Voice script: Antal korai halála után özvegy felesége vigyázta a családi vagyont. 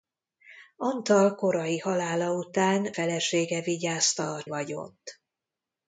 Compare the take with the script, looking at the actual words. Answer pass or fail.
fail